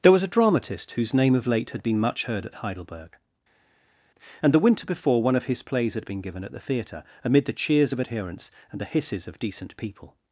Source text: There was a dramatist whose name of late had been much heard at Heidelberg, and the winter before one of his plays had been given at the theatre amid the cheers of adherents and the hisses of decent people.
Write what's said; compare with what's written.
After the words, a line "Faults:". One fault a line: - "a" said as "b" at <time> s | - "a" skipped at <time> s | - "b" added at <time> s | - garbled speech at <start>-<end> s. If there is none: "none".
There was a dramatist whose name of late had been much heard at Heidelberg, and the winter before one of his plays had been given at the theatre amid the cheers of adherents and the hisses of decent people.
Faults:
none